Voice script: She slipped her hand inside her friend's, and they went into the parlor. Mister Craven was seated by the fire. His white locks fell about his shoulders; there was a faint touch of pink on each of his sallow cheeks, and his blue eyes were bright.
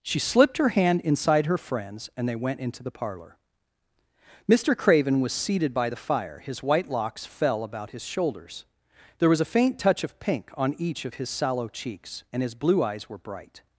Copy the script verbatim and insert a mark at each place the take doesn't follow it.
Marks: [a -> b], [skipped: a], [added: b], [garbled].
She slipped her hand inside her friend's, and they went into the parlor. Mister Craven was seated by the fire. His white locks fell about his shoulders; there was a faint touch of pink on each of his sallow cheeks, and his blue eyes were bright.